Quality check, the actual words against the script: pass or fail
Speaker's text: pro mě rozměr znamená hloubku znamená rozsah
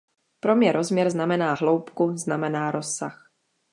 pass